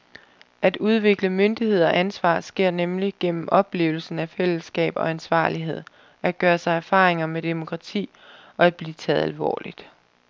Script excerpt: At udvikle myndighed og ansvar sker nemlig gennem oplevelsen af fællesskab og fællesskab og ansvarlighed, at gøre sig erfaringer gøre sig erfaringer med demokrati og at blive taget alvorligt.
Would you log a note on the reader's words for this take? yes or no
yes